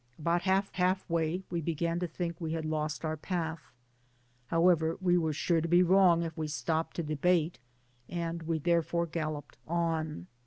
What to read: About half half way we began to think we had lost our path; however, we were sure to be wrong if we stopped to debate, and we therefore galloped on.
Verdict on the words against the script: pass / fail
pass